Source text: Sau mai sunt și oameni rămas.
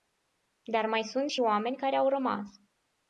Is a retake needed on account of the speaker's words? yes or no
yes